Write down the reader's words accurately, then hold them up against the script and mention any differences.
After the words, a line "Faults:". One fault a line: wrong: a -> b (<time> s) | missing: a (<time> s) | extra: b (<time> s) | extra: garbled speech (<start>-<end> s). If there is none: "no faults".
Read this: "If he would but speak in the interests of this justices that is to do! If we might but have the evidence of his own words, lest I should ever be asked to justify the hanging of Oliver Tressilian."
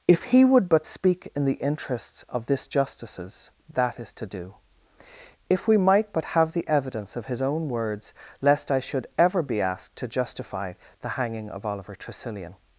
"If he would but speak in the interests of this justices that is to do! If we might but have the evidence of his own words, lest I should ever be asked to justify the hanging of Oliver Tressilian."
Faults:
no faults